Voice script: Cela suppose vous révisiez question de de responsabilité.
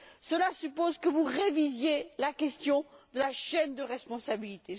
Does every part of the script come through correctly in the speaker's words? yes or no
no